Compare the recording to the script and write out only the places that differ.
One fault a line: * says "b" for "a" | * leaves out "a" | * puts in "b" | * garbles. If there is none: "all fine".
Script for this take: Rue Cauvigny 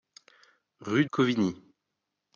all fine